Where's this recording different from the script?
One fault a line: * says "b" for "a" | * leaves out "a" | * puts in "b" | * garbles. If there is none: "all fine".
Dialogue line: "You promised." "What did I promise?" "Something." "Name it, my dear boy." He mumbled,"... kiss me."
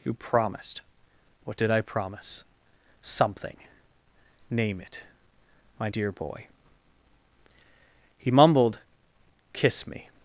all fine